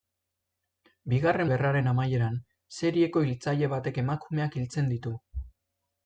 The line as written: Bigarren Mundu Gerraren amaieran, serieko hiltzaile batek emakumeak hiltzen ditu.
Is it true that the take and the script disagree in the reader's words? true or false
true